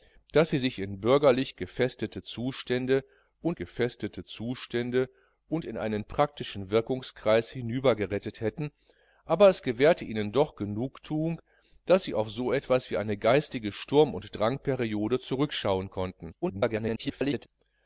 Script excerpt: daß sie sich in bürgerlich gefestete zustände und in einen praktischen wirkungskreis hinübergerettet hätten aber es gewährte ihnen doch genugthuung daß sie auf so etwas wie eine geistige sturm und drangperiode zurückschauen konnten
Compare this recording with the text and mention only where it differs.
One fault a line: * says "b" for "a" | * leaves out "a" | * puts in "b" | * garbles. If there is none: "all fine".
* puts in "gefestete zustände und"
* garbles